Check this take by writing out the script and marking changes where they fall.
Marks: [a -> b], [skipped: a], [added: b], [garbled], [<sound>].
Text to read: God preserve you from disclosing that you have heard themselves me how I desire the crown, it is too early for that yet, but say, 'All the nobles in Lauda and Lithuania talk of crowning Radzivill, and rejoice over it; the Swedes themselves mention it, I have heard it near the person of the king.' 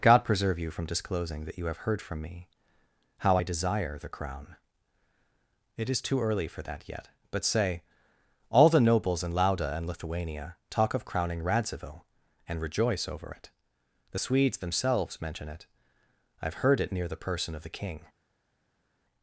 God preserve you from disclosing that you have heard [themselves -> from] me how I desire the crown, it is too early for that yet, but say, 'All the nobles in Lauda and Lithuania talk of crowning Radzivill, and rejoice over it; the Swedes themselves mention it, I have heard it near the person of the king.'